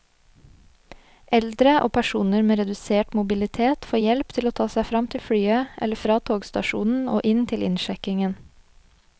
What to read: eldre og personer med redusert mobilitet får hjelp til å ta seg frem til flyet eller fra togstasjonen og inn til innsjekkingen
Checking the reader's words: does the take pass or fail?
pass